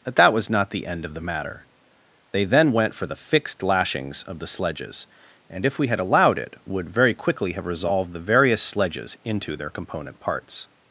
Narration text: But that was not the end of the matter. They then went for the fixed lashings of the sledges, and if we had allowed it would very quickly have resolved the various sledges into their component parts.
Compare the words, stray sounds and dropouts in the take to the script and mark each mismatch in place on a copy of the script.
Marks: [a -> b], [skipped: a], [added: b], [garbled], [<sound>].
But that was not the end of the matter. They then went for the fixed lashings of the sledges, and if we had allowed it would very quickly have resolved the various sledges into their component parts.